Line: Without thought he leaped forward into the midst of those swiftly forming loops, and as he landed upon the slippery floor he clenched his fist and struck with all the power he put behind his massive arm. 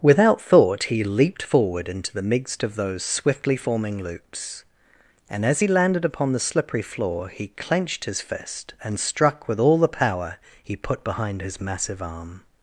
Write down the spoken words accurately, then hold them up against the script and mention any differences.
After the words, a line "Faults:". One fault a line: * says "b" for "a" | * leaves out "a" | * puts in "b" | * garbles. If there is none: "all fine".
Without thought he leaped forward into the midst of those swiftly forming loops, and as he landed upon the slippery floor he clenched his fist and struck with all the power he put behind his massive arm.
Faults:
all fine